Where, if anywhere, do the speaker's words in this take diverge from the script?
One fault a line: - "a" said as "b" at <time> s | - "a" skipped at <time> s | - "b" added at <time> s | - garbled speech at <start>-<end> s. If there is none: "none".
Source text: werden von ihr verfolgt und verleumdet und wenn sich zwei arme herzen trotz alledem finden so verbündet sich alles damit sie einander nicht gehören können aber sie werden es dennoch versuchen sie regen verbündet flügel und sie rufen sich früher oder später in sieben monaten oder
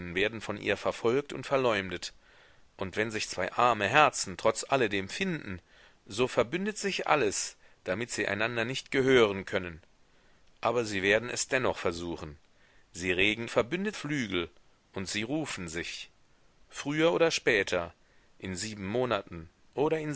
none